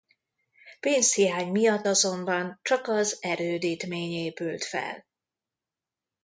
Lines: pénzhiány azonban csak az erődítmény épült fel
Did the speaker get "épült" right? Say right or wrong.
right